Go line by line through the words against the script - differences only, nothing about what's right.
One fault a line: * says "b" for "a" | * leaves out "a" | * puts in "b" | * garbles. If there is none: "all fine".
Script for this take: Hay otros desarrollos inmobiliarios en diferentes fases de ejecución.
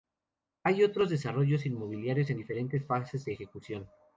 all fine